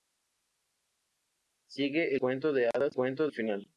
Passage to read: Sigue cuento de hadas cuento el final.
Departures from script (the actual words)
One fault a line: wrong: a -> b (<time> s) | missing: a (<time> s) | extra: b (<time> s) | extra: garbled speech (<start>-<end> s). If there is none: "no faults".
no faults